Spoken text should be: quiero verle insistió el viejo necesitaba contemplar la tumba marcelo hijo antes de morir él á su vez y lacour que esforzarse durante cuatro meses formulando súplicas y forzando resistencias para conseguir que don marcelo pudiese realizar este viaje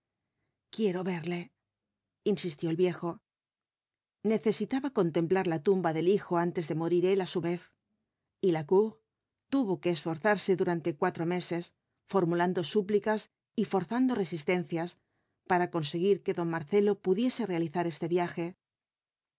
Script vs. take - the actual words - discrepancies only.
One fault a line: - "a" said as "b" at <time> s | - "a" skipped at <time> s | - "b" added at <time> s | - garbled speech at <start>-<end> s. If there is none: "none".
- "marcelo" said as "del" at 5.9 s
- "tuvo" added at 9.5 s